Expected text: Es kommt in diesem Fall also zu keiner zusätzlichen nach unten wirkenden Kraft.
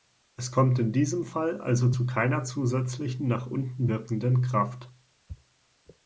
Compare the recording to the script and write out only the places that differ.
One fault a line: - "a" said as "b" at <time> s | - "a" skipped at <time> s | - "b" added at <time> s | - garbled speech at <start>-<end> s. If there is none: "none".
none